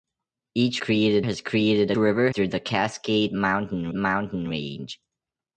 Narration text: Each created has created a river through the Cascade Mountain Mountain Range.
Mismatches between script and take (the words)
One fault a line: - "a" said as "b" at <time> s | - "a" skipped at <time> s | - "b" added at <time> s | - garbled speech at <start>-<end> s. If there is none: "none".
none